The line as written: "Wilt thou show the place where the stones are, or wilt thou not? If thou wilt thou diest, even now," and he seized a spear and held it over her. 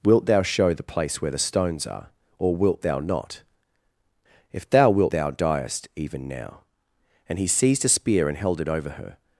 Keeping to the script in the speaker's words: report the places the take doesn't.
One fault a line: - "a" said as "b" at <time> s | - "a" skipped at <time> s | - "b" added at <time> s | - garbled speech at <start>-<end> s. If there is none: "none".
none